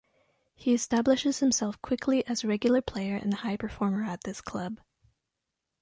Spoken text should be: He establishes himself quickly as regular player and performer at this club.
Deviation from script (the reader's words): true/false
true